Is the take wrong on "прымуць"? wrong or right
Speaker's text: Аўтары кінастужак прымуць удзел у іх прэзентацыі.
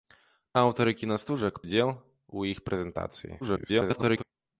wrong